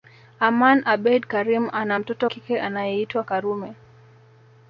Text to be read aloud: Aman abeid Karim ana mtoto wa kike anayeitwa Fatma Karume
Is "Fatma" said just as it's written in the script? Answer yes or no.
no